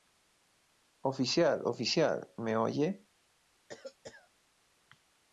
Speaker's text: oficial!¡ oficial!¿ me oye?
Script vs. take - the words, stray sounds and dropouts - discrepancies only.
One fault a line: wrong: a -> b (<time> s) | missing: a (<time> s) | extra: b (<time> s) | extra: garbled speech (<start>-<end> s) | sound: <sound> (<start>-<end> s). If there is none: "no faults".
sound: cough (3.7-4.3 s)